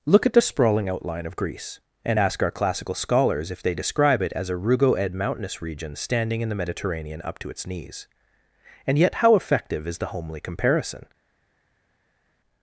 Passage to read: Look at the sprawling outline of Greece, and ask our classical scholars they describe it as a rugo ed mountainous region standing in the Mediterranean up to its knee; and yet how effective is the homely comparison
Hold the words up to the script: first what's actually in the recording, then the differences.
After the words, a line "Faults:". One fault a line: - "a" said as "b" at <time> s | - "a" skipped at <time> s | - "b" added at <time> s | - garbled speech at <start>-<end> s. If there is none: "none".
Look at the sprawling outline of Greece, and ask our classical scholars if they describe it as a rugo ed mountainous region standing in the Mediterranean up to its knees; and yet how effective is the homely comparison
Faults:
- "if" added at 3.5 s
- "knee" said as "knees" at 7.6 s